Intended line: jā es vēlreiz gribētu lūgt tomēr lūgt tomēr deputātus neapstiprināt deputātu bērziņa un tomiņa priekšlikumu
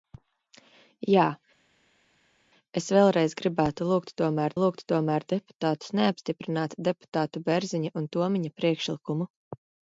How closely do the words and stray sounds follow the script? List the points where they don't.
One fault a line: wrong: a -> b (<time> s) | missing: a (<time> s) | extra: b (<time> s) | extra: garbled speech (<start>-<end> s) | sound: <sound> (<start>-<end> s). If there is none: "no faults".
no faults